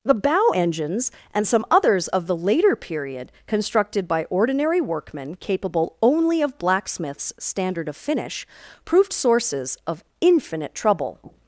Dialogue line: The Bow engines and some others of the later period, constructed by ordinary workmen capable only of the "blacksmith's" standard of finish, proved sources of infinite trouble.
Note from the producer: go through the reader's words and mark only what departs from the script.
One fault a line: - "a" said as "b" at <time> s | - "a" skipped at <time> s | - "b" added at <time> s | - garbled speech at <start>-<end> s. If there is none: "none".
- "the" skipped at 6.6 s